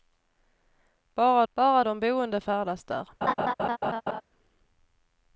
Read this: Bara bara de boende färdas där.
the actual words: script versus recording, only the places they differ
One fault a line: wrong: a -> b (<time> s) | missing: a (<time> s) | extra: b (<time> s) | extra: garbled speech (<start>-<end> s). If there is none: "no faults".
no faults